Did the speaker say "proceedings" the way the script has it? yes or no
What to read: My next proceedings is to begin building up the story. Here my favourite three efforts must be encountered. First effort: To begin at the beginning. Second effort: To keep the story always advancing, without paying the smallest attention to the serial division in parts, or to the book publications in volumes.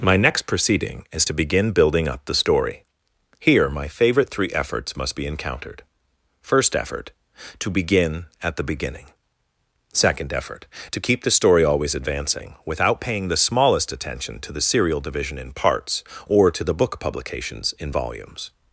no